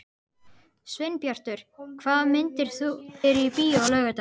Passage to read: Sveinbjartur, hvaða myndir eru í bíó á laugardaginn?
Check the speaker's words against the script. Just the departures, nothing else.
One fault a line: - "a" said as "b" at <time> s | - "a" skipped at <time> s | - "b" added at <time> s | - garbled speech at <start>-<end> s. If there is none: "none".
none